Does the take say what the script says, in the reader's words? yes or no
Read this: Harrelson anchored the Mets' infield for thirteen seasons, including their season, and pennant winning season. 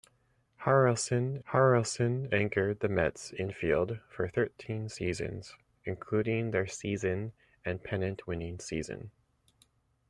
no